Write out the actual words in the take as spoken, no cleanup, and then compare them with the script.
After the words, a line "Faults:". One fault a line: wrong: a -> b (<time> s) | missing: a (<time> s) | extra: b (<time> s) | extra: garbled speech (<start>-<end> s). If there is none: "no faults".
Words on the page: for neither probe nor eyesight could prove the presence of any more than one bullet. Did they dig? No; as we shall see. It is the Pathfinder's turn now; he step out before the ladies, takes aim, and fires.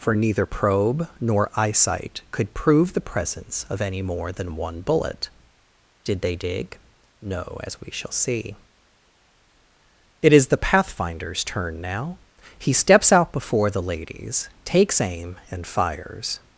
for neither probe nor eyesight could prove the presence of any more than one bullet. Did they dig? No; as we shall see. It is the Pathfinder's turn now; he steps out before the ladies, takes aim, and fires.
Faults:
wrong: step -> steps (12.7 s)